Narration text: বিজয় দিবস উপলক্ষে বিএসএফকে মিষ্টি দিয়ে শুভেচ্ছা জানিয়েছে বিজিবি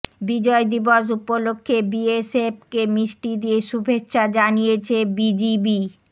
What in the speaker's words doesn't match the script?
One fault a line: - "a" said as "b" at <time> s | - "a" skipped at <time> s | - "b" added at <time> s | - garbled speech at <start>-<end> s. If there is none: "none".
none